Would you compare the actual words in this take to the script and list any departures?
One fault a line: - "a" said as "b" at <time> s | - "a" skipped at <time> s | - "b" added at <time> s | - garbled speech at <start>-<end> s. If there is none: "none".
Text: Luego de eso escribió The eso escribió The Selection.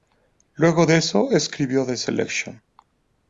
- "eso escribió The" skipped at 2.0 s